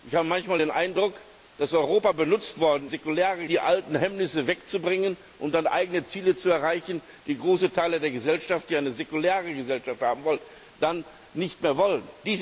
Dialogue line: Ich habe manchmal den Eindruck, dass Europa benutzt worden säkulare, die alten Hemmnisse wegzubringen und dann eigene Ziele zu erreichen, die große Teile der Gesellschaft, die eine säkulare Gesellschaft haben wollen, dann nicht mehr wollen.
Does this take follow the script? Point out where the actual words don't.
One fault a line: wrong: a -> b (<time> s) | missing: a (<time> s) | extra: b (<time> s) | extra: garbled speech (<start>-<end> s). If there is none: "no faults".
no faults